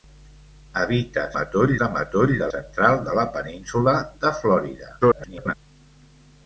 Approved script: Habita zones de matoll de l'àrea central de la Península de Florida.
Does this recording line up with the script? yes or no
no